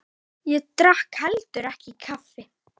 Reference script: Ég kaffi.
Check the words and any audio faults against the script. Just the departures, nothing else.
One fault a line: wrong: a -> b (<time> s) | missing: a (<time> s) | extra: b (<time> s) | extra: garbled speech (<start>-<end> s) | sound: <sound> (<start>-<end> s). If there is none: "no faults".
extra: drakk heldur ekki (0.8 s)